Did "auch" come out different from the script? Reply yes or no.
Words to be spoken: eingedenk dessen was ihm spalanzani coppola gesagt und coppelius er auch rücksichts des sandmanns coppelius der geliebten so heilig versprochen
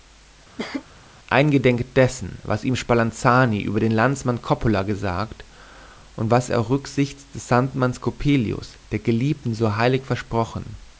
no